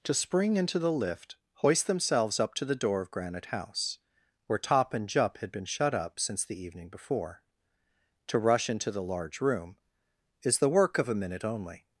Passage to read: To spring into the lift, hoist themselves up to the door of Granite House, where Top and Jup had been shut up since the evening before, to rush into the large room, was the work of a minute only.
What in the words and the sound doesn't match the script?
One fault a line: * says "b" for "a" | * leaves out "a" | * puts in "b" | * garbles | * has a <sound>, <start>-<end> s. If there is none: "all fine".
* says "is" for "was"